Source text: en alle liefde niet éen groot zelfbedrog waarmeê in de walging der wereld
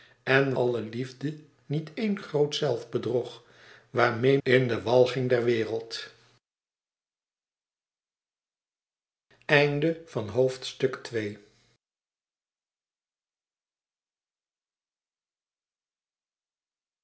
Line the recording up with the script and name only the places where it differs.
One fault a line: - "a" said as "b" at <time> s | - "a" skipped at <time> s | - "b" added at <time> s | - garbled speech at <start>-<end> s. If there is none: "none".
none